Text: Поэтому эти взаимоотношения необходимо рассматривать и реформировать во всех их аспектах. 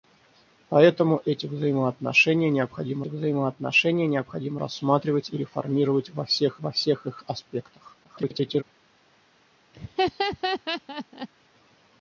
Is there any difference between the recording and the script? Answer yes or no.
yes